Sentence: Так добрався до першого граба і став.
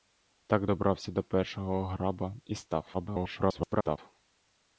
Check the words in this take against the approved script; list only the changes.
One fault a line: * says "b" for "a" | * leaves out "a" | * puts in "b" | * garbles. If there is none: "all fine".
* garbles